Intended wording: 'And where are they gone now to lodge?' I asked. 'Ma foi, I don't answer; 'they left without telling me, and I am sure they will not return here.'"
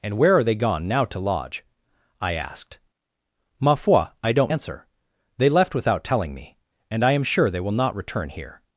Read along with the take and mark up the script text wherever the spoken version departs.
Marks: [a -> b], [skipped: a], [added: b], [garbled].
'And where are they gone now to lodge?' I asked. 'Ma foi, I don't answer; 'they left without telling me, and I am sure they will not return here.'"